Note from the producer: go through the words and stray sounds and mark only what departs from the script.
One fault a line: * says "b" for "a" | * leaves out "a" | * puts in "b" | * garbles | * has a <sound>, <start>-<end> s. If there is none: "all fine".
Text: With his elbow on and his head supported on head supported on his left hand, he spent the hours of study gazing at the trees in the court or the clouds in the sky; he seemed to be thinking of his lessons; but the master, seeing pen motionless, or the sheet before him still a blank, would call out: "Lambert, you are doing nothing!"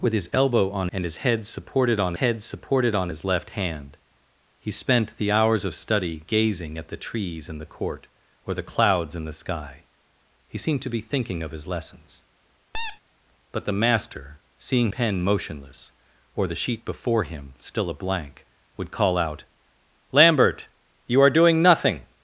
* has a squeak, 12.7-13.0 s